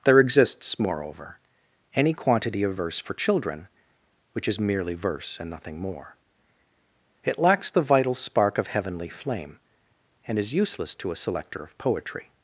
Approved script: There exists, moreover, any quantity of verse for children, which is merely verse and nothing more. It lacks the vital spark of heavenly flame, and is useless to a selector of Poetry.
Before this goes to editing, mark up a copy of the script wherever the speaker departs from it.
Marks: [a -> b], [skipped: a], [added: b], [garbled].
There exists, moreover, any quantity of verse for children, which is merely verse and nothing more. It lacks the vital spark of heavenly flame, and is useless to a selector of Poetry.